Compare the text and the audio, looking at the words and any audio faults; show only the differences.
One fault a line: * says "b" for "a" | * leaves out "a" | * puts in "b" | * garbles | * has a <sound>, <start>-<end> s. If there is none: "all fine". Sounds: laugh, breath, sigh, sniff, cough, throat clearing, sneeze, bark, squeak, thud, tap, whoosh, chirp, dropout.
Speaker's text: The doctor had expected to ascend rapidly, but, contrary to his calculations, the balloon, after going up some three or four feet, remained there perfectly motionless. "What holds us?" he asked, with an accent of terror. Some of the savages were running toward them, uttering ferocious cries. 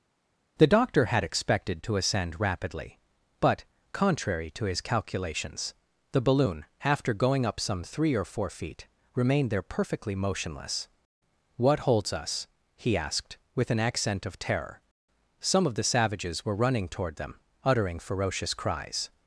all fine